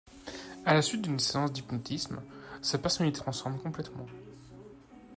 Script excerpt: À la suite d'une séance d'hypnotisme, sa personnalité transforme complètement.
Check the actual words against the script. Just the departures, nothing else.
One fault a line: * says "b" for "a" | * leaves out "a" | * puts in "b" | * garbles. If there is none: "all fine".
all fine